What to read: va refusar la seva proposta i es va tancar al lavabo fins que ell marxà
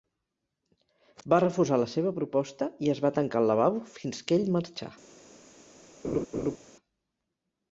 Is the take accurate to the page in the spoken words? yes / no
yes